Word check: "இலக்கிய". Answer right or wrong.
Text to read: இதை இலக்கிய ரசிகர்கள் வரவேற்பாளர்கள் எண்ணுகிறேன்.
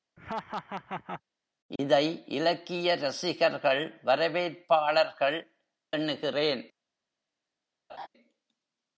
right